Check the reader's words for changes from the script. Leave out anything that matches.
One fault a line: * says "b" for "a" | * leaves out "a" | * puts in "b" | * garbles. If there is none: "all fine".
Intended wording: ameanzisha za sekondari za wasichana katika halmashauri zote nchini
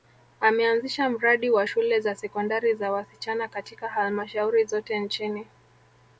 * puts in "mradi wa shule"